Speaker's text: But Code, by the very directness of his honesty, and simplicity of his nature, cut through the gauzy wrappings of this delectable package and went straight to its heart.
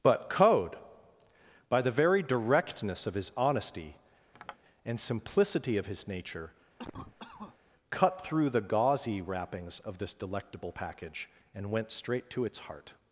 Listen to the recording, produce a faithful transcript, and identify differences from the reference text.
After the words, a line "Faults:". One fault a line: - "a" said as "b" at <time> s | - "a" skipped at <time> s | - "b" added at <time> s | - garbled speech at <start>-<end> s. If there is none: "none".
But Code, by the very directness of his honesty, and simplicity of his nature, cut through the gauzy wrappings of this delectable package and went straight to its heart.
Faults:
none